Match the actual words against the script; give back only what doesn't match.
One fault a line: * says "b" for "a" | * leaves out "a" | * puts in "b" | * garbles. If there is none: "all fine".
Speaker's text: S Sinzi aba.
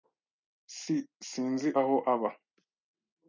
* puts in "aho"